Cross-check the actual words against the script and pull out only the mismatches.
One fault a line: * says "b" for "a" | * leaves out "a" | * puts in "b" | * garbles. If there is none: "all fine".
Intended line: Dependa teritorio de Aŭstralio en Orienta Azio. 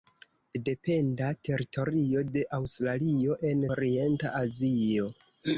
all fine